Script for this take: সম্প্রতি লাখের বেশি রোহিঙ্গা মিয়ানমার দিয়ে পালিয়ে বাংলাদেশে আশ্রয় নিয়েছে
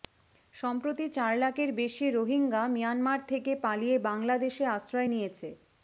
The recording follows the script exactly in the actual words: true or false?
false